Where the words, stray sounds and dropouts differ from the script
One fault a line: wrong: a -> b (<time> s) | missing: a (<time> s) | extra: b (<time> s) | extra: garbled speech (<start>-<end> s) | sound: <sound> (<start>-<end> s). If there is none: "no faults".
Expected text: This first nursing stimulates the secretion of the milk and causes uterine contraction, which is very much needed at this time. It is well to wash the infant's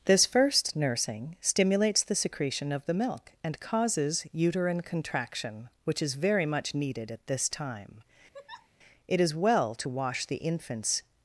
sound: laugh (8.3-8.7 s)